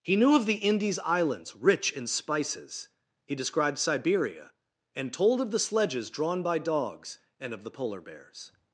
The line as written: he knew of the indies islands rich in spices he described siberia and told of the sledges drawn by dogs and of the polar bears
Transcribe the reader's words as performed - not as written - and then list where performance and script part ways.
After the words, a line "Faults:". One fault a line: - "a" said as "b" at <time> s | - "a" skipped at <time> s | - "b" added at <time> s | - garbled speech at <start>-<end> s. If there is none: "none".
he knew of the indies islands rich in spices he described siberia and told of the sledges drawn by dogs and of the polar bears
Faults:
none